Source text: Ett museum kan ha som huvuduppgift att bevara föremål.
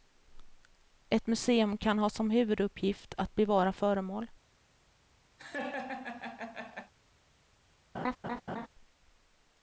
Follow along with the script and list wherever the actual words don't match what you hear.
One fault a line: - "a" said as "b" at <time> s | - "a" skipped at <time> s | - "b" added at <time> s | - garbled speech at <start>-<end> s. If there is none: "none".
none